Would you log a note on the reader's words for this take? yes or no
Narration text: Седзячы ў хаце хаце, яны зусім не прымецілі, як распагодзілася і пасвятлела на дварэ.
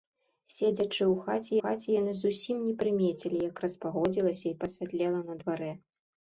no